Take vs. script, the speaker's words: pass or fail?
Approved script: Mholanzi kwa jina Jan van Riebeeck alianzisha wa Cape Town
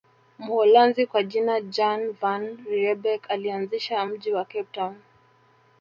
fail